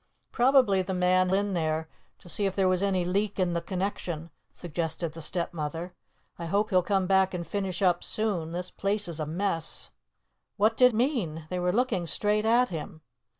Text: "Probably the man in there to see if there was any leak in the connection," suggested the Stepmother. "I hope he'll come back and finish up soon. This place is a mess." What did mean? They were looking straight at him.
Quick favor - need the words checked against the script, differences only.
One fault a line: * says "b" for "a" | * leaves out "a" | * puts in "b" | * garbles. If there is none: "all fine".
all fine